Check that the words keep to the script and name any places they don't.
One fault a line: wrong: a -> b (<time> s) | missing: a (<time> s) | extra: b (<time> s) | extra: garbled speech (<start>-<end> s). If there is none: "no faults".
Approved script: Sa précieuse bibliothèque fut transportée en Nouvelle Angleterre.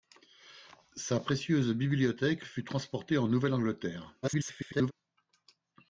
extra: garbled speech (4.2-4.9 s)